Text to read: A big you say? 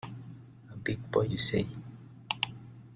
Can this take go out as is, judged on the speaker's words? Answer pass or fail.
fail